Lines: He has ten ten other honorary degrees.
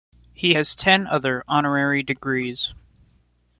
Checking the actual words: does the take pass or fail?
fail